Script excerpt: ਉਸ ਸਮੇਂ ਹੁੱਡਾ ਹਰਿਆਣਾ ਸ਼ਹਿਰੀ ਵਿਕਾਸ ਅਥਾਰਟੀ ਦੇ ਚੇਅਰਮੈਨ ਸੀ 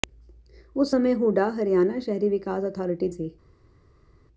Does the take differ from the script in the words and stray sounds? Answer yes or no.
yes